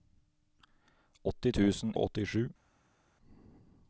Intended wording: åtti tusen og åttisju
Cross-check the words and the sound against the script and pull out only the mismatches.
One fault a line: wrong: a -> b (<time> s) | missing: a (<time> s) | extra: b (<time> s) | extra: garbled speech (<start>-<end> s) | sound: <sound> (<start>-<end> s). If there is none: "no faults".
no faults